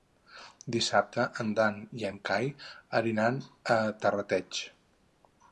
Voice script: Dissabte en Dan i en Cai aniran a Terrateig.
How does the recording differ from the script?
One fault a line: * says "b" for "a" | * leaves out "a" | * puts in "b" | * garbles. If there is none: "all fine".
all fine